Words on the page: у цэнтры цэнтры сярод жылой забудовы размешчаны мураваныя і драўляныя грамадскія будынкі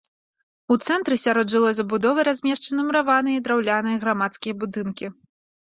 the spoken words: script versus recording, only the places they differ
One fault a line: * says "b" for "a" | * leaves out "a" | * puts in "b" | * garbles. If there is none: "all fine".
* leaves out "цэнтры"